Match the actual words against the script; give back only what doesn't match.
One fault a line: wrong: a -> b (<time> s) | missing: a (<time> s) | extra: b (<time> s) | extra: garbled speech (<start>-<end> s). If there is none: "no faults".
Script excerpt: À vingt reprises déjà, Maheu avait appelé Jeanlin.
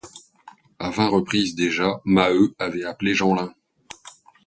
no faults